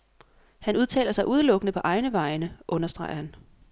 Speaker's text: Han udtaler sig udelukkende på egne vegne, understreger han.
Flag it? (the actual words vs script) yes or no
no